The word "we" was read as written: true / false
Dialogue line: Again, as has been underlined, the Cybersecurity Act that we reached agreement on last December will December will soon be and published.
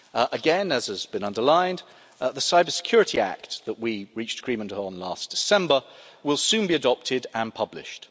true